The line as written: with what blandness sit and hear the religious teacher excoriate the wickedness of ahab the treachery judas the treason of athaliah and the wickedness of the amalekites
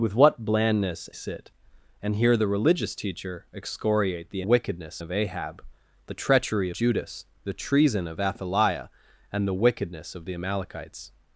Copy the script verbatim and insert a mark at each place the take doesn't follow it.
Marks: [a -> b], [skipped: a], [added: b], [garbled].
with what blandness sit and hear the religious teacher excoriate the wickedness of ahab the treachery judas the treason of athaliah and the wickedness of the amalekites